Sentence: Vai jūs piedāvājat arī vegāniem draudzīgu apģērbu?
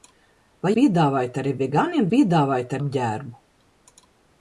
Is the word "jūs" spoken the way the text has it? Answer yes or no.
no